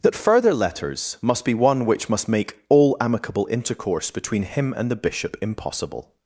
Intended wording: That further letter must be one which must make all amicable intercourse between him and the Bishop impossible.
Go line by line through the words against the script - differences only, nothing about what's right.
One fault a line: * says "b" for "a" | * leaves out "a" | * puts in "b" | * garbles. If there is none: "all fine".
* says "letters" for "letter"